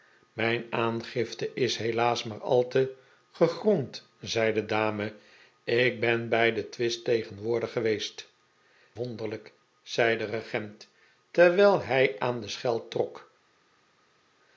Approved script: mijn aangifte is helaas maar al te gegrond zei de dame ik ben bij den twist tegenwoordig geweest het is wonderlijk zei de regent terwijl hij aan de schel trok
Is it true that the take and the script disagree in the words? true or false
true